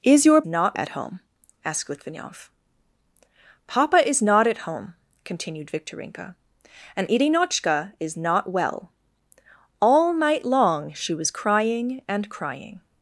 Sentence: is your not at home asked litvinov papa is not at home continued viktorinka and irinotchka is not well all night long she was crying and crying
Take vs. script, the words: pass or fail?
pass